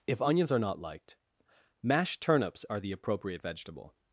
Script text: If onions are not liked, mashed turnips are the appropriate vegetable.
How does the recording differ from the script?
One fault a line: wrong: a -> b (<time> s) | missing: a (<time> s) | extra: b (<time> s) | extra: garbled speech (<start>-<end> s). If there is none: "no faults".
no faults